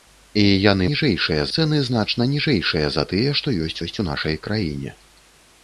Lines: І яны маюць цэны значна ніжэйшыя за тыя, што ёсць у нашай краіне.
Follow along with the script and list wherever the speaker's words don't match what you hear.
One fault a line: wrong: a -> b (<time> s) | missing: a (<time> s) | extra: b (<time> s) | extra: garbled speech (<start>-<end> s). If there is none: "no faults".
wrong: маюць -> ніжэйшыя (0.9 s)
extra: ёсць (3.8 s)